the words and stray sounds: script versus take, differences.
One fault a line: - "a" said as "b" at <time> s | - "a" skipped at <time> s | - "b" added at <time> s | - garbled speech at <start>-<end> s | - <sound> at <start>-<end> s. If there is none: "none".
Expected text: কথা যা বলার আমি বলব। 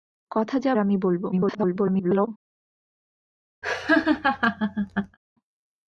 - "বলার" skipped at 0.7 s
- garbled speech at 1.3-2.3 s
- laugh at 3.6-5.2 s